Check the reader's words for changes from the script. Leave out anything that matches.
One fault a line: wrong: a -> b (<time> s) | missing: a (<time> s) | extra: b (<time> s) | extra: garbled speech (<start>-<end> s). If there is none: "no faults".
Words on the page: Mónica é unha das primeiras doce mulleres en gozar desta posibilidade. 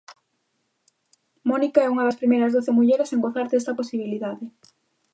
no faults